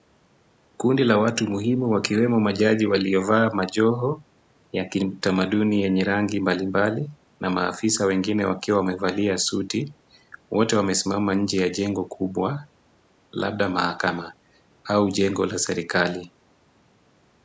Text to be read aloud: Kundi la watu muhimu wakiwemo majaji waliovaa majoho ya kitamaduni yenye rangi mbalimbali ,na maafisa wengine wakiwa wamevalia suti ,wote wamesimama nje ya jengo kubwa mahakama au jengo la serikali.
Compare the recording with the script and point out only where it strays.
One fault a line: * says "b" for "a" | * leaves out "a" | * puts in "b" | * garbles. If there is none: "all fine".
* puts in "labda"